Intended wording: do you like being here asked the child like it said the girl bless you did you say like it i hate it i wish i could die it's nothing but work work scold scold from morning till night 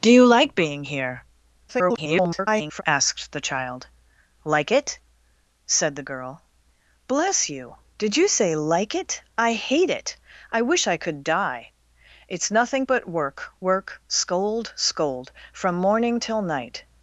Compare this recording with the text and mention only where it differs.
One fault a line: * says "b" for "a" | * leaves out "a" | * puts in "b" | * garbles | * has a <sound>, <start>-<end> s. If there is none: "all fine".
* garbles